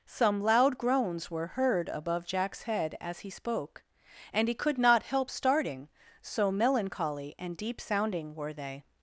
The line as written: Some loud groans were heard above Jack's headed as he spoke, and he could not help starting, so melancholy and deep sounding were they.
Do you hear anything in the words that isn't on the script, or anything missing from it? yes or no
yes